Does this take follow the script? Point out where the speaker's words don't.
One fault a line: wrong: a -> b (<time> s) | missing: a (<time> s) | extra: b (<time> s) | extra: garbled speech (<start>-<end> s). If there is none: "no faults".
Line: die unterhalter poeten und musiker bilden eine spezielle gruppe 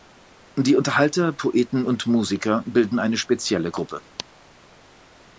no faults